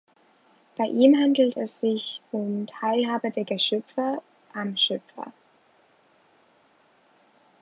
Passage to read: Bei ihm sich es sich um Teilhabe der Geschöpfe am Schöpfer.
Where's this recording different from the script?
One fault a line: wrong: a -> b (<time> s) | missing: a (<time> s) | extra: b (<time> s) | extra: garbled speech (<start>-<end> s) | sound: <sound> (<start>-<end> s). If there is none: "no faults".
wrong: sich -> handelt (1.1 s)